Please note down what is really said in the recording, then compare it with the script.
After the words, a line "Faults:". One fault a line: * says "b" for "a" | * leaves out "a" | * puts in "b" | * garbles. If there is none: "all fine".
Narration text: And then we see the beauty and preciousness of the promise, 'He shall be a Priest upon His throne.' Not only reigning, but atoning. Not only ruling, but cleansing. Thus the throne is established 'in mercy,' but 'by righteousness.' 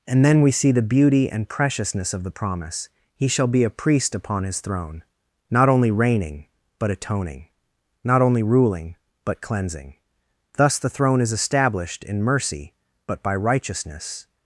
And then we see the beauty and preciousness of the promise, 'He shall be a Priest upon His throne.' Not only reigning, but atoning. Not only ruling, but cleansing. Thus the throne is established 'in mercy,' but 'by righteousness.'
Faults:
all fine